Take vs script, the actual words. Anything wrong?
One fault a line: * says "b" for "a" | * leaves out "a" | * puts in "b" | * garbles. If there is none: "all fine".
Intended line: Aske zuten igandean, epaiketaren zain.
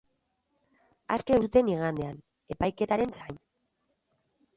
all fine